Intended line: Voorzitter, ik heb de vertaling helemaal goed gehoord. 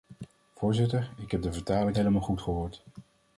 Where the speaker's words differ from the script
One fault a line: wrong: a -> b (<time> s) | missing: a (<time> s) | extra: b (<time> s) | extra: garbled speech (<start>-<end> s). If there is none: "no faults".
no faults